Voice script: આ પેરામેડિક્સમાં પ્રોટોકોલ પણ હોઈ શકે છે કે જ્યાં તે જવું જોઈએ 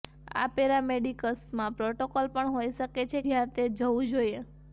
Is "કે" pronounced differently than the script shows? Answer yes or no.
yes